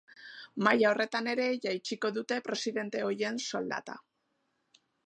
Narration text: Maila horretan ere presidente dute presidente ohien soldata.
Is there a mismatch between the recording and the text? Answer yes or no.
yes